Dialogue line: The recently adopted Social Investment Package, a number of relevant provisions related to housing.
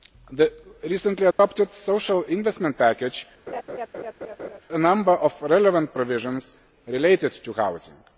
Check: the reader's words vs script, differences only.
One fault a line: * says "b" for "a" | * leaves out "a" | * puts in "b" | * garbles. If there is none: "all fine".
all fine